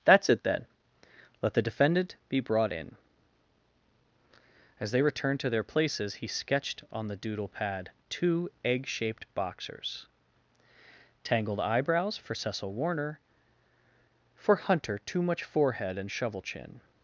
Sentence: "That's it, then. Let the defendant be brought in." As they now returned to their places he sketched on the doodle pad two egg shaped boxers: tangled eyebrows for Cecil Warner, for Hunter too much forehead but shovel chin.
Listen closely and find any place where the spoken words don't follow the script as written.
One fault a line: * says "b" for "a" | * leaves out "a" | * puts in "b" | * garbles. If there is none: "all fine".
* leaves out "now"
* says "and" for "but"